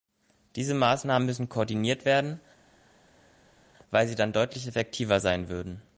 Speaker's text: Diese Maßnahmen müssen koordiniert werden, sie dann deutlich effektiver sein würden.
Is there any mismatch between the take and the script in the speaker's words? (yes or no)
yes